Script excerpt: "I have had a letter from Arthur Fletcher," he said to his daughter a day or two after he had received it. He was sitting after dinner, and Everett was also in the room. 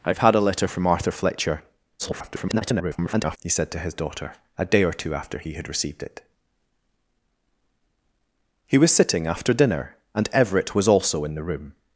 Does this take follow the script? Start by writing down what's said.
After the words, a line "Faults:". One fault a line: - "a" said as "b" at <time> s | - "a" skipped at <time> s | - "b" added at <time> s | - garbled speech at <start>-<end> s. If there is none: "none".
"I have had a letter from Arthur Fletcher," [garbled] he said to his daughter a day or two after he had received it. He was sitting after dinner, and Everett was also in the room.
Faults:
- garbled speech at 2.0-3.4 s